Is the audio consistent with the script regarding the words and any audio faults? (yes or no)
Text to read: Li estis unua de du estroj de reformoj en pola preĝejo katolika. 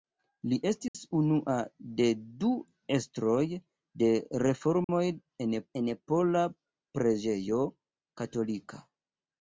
no